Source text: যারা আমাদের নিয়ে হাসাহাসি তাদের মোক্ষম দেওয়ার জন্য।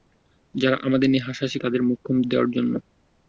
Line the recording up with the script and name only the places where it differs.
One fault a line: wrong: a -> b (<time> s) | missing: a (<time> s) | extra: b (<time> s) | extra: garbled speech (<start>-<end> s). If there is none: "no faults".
no faults